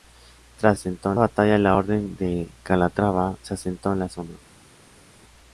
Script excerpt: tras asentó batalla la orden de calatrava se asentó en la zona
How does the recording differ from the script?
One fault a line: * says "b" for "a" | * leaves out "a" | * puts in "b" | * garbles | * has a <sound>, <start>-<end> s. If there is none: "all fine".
all fine